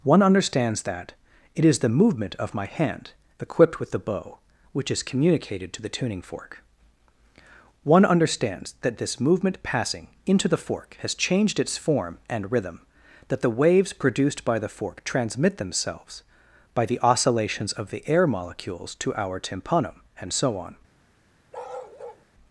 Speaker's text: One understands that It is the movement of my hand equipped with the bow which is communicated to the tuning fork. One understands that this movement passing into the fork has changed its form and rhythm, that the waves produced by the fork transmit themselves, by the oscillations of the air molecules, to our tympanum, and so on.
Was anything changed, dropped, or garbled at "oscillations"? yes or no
no